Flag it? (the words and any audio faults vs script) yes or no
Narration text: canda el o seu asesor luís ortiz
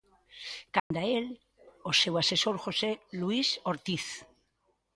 yes